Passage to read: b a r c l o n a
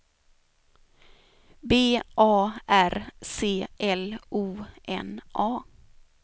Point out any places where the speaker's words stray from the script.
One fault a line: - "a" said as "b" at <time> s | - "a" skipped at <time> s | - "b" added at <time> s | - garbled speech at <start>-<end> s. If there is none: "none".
none